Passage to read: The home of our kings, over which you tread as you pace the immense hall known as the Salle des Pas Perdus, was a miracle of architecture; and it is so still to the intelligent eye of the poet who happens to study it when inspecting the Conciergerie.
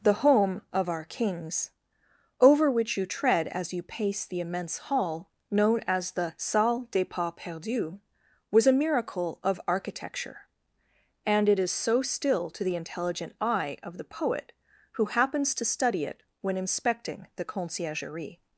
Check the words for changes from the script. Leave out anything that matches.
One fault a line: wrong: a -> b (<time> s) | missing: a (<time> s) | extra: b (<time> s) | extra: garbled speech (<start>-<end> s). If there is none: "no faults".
no faults